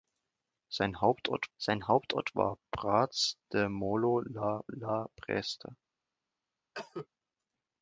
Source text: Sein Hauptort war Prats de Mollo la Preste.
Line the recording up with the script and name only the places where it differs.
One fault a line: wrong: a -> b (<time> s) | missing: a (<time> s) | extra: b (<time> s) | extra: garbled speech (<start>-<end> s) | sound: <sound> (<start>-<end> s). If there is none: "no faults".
extra: sein Hauptort (1.6 s)
extra: la (4.7 s)
sound: cough (6.7-7.1 s)